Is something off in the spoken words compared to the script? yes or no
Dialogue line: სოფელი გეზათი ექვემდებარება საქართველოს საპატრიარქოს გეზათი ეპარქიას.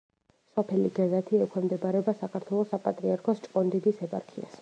yes